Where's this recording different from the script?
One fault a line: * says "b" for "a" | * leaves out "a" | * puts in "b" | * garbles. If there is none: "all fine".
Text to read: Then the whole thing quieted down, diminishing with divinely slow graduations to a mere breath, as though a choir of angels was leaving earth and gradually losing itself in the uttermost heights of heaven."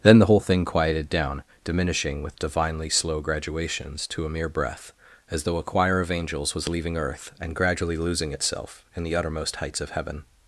all fine